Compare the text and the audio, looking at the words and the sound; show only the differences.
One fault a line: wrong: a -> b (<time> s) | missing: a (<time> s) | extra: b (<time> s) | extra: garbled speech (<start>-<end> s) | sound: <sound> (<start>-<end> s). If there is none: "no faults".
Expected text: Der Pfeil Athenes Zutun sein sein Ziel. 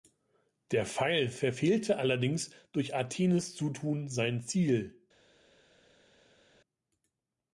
extra: verfehlte allerdings durch (1.3 s)
missing: sein (4.4 s)